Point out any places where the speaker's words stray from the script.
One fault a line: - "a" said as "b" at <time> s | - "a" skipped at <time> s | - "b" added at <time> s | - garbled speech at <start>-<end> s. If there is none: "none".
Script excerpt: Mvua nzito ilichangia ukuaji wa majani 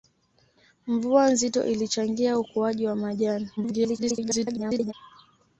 - garbled speech at 3.6-4.9 s